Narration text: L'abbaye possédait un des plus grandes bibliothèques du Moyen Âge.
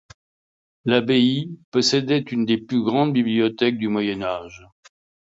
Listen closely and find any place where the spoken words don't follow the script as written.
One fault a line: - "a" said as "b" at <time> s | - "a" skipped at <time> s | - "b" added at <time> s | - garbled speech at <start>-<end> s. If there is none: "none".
- "un" said as "une" at 2.3 s